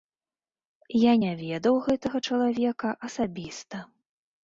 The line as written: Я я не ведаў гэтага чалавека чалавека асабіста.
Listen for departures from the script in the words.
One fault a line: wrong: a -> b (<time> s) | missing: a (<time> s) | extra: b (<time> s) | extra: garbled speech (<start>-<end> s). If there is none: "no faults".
missing: я (1.1 s)
missing: чалавека (3.0 s)